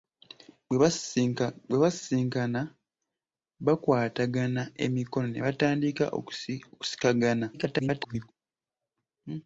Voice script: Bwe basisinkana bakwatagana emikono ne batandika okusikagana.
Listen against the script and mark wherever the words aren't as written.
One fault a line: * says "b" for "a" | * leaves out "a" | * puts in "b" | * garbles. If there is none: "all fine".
* garbles